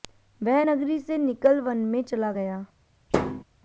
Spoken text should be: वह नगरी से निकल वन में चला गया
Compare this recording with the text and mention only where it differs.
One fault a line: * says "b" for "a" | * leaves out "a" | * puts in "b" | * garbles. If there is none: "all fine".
all fine